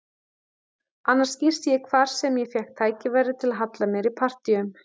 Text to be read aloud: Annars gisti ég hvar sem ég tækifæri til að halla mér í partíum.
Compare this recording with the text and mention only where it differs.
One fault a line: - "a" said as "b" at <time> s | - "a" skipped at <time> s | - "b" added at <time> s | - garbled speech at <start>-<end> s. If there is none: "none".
- "fékk" added at 2.5 s